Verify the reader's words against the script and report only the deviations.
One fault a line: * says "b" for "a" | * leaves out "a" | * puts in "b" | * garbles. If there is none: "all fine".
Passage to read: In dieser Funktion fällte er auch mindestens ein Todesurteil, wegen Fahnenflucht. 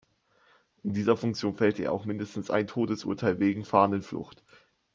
all fine